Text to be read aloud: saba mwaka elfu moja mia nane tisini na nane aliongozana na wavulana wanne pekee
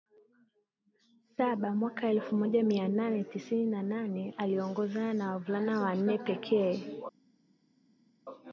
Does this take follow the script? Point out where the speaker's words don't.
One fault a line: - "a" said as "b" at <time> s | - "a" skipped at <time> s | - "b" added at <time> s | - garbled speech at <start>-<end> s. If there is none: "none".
none